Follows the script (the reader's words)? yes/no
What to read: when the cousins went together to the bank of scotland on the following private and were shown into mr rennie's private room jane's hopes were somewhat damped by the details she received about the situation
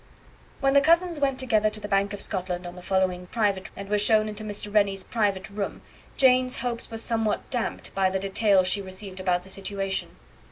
yes